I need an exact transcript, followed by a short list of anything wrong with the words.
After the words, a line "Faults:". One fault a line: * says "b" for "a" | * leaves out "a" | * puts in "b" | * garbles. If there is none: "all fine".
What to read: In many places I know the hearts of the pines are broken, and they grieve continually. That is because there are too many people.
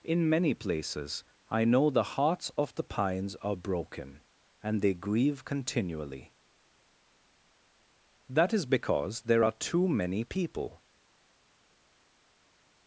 In many places I know the hearts of the pines are broken, and they grieve continually. That is because there are too many people.
Faults:
all fine